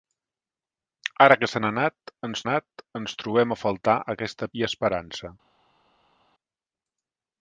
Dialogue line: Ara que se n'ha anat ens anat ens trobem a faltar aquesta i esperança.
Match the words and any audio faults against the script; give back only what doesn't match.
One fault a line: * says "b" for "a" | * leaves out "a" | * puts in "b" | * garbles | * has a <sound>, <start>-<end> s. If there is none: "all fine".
all fine